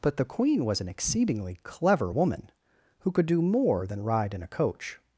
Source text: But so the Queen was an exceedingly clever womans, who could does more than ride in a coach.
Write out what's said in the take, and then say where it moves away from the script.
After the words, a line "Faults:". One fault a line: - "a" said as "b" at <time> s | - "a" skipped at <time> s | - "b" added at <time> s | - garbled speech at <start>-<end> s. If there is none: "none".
But the Queen was an exceedingly clever woman, who could do more than ride in a coach.
Faults:
- "so" skipped at 0.2 s
- "womans" said as "woman" at 2.1 s
- "does" said as "do" at 3.3 s